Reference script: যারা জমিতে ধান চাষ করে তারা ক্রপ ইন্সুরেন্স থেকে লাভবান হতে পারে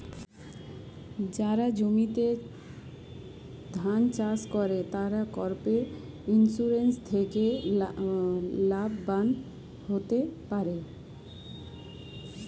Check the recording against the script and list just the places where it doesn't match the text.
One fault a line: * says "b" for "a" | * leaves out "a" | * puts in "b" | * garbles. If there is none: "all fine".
all fine